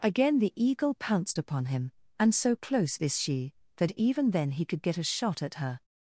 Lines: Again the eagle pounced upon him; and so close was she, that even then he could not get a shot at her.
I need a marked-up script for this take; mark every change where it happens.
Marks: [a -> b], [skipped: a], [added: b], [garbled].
Again the eagle pounced upon him; and so close [was -> is] she, that even then he could [skipped: not] get a shot at her.